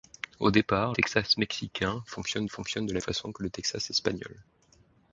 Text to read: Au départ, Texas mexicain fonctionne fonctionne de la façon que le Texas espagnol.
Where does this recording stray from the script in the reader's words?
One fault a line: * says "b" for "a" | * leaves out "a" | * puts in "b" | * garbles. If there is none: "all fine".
all fine